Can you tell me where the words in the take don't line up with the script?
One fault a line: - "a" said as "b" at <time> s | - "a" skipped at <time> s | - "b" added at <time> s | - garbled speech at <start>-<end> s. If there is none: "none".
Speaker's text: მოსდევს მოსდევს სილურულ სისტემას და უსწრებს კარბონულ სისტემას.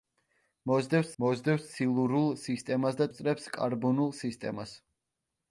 none